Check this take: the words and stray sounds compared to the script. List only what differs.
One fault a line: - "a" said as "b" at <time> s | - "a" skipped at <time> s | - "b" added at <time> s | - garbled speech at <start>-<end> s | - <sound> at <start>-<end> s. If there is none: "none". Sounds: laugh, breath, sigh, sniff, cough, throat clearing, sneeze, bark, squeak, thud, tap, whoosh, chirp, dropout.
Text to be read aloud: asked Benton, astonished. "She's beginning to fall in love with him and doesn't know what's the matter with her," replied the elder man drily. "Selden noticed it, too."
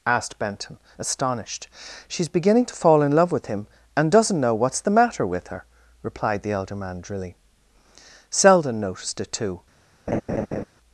- laugh at 10.1-10.6 s